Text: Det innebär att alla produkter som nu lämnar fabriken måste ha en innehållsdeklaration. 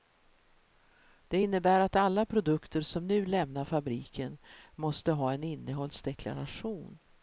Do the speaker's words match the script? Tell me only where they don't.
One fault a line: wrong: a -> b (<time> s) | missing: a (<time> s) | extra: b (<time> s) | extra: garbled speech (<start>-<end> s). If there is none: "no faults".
no faults